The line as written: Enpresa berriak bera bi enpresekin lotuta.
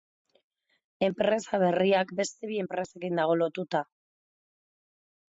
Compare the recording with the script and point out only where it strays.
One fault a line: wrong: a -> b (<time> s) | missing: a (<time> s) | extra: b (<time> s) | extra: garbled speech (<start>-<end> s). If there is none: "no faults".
wrong: bera -> beste (2.2 s)
extra: dago (3.2 s)